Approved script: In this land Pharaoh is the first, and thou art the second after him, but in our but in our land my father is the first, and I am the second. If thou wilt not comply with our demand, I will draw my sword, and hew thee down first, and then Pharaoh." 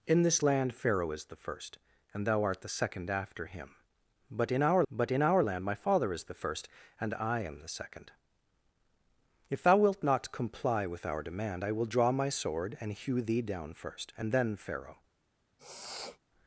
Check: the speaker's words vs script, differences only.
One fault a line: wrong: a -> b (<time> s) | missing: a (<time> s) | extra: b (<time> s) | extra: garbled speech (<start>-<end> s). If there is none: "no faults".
no faults